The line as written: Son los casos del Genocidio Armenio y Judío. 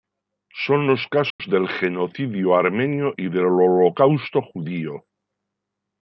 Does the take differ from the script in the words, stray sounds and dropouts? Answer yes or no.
yes